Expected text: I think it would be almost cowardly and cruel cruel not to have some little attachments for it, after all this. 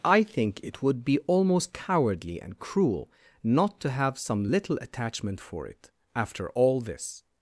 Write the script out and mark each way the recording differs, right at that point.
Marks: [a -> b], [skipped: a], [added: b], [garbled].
I think it would be almost cowardly and cruel [skipped: cruel] not to have some little [attachments -> attachment] for it, after all this.